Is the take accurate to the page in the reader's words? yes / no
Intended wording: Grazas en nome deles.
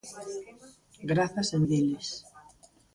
no